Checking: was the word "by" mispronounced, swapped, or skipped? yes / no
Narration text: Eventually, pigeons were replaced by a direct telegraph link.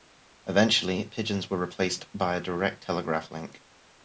no